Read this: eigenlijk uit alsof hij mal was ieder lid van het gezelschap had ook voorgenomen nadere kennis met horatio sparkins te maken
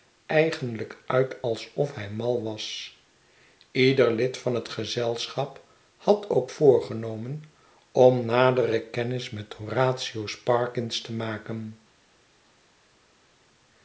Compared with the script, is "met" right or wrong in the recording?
right